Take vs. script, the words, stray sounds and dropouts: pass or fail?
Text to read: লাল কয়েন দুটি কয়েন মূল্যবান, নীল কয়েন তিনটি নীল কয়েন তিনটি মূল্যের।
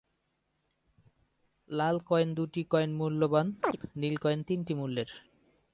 fail